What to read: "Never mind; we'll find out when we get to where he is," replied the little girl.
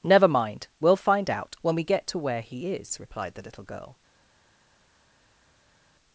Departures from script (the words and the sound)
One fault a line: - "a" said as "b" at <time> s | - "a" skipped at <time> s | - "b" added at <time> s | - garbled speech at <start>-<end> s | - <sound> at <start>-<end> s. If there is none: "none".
none